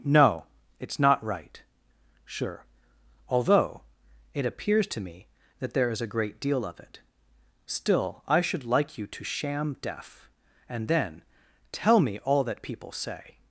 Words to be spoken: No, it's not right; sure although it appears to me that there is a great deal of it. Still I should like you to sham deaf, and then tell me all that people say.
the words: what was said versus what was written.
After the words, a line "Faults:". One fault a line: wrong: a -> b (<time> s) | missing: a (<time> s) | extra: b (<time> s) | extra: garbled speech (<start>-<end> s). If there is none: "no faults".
No, it's not right; sure although it appears to me that there is a great deal of it. Still I should like you to sham deaf, and then tell me all that people say.
Faults:
no faults